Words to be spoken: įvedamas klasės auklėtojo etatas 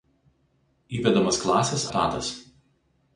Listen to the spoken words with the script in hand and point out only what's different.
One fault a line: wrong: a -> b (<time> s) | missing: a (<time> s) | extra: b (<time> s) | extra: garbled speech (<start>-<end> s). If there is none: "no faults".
missing: auklėtojo (1.9 s)